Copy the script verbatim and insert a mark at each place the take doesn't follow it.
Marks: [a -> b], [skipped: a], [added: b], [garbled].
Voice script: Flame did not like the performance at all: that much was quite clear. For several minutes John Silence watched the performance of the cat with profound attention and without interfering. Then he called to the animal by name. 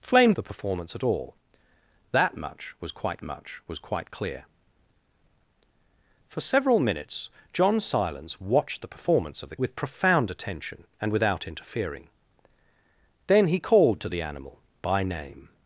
Flame [skipped: did not like] the performance at all: that much was quite [added: much was quite] clear. For several minutes John Silence watched the performance of the [skipped: cat] with profound attention and without interfering. Then he called to the animal by name.